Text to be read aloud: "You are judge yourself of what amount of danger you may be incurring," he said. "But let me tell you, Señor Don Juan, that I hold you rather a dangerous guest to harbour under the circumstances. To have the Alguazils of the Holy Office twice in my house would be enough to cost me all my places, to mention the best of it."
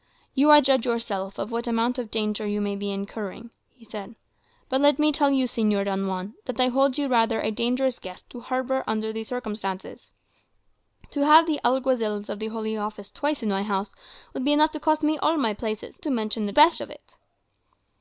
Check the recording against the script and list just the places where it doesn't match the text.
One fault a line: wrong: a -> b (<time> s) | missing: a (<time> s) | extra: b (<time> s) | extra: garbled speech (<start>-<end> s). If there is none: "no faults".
no faults